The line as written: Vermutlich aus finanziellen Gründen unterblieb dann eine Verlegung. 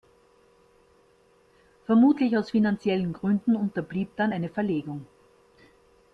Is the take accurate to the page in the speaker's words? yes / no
yes